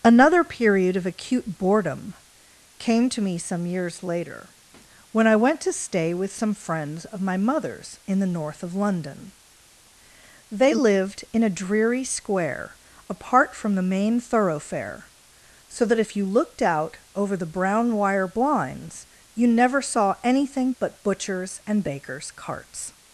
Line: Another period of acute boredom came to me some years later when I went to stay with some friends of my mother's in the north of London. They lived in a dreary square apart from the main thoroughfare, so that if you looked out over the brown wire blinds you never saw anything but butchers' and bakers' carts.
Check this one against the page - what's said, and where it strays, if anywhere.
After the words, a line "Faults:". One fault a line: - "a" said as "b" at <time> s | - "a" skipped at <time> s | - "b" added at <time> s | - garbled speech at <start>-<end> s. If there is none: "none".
Another period of acute boredom came to me some years later when I went to stay with some friends of my mother's in the north of London. They lived in a dreary square apart from the main thoroughfare, so that if you looked out over the brown wire blinds you never saw anything but butchers' and bakers' carts.
Faults:
none